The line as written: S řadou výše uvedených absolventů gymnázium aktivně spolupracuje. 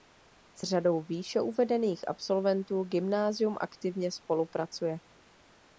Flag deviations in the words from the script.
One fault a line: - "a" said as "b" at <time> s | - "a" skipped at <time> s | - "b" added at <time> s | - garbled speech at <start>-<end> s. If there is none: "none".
none